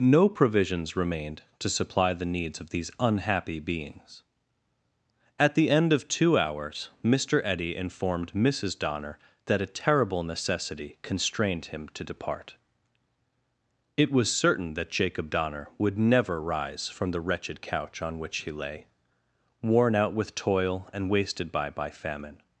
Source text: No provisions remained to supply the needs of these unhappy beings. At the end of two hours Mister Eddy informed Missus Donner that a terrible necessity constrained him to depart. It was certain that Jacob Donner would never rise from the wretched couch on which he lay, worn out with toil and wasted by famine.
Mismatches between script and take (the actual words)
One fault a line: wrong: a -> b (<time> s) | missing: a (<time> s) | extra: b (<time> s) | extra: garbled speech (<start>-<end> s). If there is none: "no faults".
extra: by (21.7 s)